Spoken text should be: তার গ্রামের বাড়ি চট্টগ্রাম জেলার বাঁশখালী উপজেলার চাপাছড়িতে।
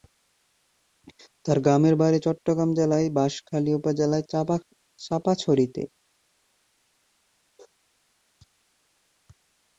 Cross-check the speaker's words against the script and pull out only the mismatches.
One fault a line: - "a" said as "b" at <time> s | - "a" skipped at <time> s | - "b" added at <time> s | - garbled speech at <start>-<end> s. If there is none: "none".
none